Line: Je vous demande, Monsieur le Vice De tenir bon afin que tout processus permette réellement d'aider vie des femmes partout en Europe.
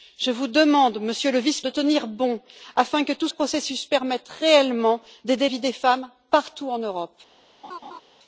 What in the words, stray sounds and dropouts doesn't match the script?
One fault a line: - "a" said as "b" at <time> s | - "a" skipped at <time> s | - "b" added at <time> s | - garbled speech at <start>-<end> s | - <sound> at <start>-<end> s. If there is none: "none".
- laugh at 7.6-8.0 s